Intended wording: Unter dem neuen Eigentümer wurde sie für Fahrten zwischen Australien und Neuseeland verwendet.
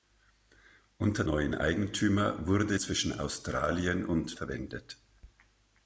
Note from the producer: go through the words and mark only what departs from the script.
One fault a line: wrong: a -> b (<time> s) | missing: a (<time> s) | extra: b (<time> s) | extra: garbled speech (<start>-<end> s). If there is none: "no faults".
missing: dem (1.2 s)
missing: sie für Fahrten (2.8 s)
missing: Neuseeland (4.4 s)